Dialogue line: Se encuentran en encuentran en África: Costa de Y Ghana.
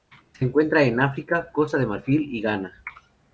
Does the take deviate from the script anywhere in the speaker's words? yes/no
yes